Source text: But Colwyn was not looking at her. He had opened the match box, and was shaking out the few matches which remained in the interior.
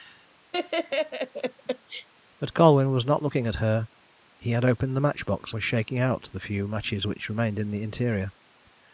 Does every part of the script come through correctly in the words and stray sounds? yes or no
no